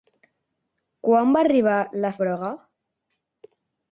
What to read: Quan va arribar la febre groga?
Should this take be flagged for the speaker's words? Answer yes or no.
yes